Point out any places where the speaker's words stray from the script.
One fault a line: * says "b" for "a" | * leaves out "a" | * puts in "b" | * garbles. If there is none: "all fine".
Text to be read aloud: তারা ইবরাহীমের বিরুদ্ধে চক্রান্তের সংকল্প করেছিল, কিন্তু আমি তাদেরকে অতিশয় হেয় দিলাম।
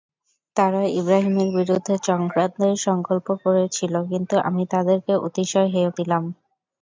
all fine